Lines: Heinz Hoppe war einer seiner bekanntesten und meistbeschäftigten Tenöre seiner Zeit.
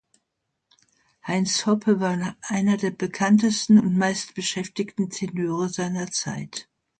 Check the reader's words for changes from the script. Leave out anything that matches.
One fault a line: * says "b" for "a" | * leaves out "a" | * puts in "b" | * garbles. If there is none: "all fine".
* says "der" for "seiner"